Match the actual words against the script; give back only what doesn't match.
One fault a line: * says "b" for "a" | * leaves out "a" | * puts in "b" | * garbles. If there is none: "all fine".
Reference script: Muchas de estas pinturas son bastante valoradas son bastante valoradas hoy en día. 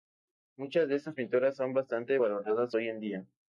* leaves out "son bastante valoradas"